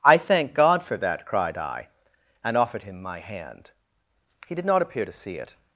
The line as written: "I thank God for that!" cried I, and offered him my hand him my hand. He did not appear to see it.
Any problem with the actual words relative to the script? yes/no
yes